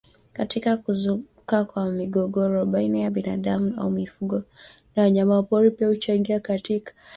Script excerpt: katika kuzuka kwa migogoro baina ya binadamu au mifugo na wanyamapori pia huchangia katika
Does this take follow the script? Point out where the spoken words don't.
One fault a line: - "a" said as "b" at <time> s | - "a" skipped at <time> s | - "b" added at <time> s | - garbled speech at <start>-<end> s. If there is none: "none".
none